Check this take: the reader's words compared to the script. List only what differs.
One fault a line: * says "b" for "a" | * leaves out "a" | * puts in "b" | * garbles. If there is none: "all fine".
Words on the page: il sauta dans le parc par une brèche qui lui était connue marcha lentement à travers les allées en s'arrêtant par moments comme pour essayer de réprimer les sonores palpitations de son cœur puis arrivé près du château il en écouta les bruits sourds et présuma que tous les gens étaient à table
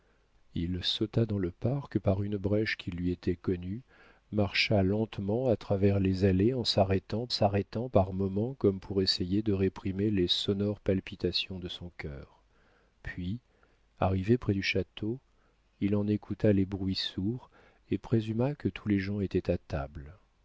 * puts in "s'arrêtant"